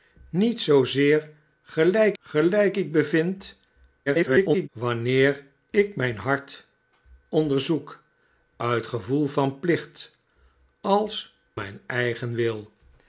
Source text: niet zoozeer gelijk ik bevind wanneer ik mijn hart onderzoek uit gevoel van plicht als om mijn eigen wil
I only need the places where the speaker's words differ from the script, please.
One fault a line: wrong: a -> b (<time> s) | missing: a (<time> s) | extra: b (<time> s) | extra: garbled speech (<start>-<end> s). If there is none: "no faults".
extra: gelijk (2.2 s)
extra: garbled speech (4.1-4.7 s)
missing: om (11.4 s)